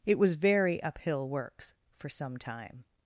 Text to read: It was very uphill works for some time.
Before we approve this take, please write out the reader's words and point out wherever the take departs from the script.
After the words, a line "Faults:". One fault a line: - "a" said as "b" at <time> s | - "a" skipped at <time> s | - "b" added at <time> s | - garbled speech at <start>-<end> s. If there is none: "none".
It was very uphill works for some time.
Faults:
none